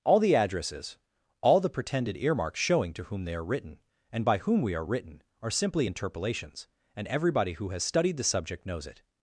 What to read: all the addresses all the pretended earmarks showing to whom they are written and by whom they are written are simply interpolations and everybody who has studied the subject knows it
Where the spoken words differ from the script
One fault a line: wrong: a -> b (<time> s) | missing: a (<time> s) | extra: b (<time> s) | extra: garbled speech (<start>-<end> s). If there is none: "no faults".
wrong: they -> we (4.6 s)